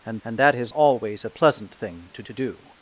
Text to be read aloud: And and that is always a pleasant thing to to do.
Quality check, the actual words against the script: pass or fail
pass